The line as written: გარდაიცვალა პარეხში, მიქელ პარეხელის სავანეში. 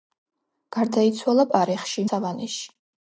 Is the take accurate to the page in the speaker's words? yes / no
no